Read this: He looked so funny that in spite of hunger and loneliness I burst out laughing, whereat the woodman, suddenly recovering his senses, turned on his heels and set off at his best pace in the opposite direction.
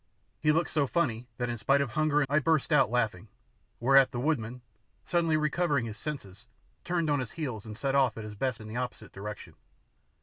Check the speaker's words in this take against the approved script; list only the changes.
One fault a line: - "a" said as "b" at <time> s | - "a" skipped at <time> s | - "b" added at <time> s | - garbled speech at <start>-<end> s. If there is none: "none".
- "and loneliness" skipped at 2.2 s
- "pace" skipped at 8.6 s